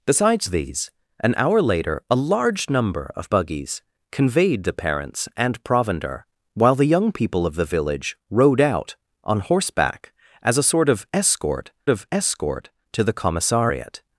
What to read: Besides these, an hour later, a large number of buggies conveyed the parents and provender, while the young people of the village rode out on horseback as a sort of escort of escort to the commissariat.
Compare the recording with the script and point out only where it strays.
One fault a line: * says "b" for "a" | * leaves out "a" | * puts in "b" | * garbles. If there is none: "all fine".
all fine